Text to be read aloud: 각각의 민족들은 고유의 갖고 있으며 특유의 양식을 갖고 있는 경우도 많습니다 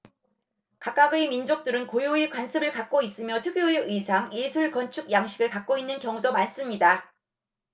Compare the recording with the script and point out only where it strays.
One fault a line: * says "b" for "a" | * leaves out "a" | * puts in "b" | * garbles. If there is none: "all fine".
* puts in "관습을"
* puts in "의상 예술 건축"